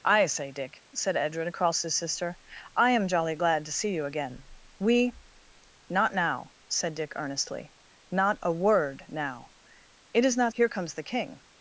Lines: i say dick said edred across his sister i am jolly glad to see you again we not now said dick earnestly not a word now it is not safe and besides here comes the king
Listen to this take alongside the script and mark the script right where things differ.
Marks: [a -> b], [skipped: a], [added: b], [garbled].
i say dick said edred across his sister i am jolly glad to see you again we not now said dick earnestly not a word now it is not [skipped: safe and besides] here comes the king